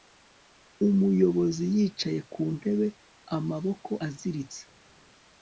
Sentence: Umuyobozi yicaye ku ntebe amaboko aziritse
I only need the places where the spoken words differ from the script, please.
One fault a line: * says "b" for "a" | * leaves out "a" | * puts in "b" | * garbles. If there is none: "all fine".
all fine